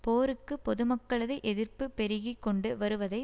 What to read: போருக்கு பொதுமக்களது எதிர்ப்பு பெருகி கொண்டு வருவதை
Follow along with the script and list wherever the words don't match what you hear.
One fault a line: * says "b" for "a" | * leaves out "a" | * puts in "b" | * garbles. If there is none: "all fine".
all fine